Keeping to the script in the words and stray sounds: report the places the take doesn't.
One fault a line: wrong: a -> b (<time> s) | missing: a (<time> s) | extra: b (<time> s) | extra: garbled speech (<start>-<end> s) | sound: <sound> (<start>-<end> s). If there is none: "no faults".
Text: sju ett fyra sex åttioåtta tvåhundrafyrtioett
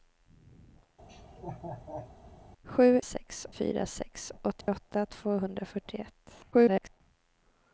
sound: laugh (1.1-2.1 s)
wrong: ett -> sex (3.0 s)
sound: dropout (4.6-4.7 s)
extra: garbled speech (6.5-7.0 s)